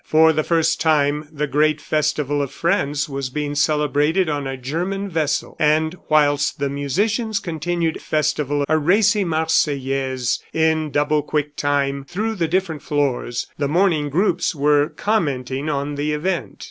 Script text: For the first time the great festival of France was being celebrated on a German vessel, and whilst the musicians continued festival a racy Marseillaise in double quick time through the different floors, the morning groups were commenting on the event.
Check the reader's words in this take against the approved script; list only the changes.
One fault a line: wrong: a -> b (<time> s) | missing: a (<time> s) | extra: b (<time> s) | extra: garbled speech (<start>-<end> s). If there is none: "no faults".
no faults